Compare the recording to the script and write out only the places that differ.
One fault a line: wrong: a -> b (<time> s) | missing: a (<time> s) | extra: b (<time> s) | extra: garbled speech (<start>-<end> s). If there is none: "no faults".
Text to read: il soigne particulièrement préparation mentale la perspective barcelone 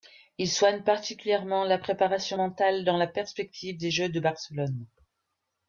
extra: la (1.6 s)
extra: dans (2.9 s)
extra: des jeux de (3.8 s)